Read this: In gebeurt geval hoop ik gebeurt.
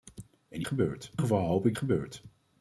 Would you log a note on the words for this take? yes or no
no